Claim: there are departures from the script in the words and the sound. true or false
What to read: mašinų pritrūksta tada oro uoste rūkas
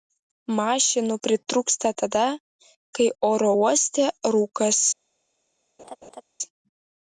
true